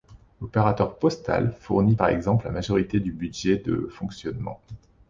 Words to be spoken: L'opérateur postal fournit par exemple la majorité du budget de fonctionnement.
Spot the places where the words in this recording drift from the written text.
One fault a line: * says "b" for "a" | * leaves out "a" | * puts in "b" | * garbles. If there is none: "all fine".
all fine